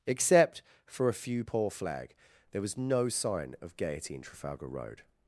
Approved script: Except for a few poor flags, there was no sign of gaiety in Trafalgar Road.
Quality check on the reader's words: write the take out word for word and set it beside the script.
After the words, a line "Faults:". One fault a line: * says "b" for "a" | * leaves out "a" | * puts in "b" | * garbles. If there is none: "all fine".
Except for a few poor flag, there was no sign of gaiety in Trafalgar Road.
Faults:
* says "flag" for "flags"